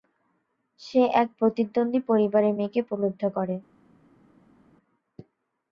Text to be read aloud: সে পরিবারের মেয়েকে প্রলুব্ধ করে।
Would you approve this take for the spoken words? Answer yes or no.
no